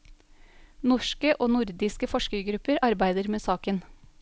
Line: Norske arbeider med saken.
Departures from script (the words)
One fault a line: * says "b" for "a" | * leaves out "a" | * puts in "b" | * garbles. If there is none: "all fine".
* puts in "og nordiske forskergrupper"